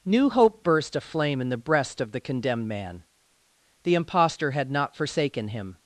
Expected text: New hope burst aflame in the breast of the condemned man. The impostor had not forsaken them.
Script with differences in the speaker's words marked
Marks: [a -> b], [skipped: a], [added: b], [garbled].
New hope burst aflame in the breast of the condemned man. The impostor had not forsaken [them. -> him]